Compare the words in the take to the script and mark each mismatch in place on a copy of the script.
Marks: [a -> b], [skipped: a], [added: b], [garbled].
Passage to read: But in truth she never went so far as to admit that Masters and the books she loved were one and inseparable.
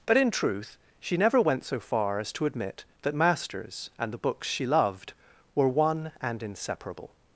But in truth she never went so far as to admit that Masters and the books she loved were one and inseparable.